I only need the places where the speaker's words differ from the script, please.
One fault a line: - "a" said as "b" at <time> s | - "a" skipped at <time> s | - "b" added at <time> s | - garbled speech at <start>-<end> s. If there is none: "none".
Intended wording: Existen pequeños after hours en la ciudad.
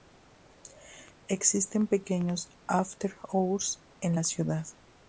none